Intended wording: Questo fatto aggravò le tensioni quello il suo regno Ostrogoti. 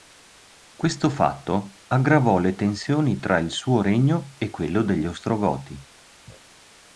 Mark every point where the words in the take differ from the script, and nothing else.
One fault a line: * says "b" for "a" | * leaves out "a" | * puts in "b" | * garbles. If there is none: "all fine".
* says "tra" for "quello"
* puts in "e quello degli"